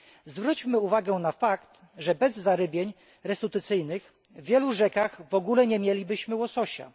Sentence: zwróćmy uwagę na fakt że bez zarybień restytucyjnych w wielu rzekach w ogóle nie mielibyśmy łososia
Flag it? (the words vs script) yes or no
no